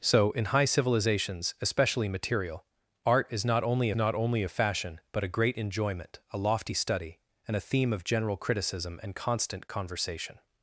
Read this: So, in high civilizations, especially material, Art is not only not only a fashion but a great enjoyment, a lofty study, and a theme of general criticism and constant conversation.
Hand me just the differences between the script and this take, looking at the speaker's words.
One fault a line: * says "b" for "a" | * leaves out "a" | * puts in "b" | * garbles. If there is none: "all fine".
all fine